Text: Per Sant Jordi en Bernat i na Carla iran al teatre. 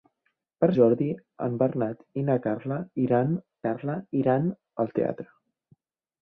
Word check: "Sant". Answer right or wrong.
wrong